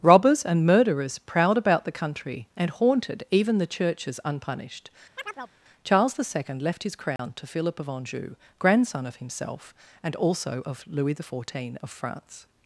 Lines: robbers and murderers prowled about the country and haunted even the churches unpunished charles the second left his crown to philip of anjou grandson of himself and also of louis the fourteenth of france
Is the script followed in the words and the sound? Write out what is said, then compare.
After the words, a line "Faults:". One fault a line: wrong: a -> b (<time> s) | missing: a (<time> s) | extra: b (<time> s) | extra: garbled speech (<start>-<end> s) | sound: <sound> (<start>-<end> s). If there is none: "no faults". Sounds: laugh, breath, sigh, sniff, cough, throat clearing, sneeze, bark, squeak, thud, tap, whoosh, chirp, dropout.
robbers and murderers prowled about the country and haunted even the churches unpunished charles the second left his crown to philip of anjou grandson of himself and also of louis the fourteenth of france
Faults:
sound: chirp (5.2-5.5 s)
sound: dropout (7.2-7.2 s)